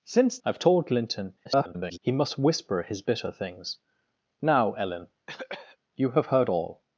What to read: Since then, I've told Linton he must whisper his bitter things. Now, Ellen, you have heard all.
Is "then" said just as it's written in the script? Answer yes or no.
no